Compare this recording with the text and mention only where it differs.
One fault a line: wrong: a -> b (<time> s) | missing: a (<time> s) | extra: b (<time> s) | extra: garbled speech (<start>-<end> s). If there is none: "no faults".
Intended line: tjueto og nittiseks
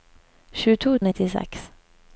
no faults